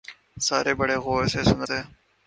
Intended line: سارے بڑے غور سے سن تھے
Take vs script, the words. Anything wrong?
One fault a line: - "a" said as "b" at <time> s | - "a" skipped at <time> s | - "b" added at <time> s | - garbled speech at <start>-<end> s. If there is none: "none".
none